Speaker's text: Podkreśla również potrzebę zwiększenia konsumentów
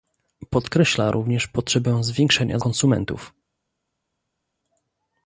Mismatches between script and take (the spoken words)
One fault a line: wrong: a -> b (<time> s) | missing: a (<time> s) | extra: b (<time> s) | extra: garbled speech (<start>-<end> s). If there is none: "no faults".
no faults